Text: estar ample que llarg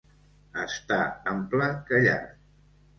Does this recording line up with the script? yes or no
yes